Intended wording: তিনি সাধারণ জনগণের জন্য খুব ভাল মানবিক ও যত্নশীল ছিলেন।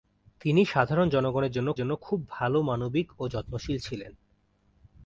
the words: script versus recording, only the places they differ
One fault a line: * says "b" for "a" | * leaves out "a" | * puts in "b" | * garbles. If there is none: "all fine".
* puts in "জন্য"